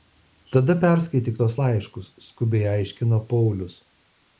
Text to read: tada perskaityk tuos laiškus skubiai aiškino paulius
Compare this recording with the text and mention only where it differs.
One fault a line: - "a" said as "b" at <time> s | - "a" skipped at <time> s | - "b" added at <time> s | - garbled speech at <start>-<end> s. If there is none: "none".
none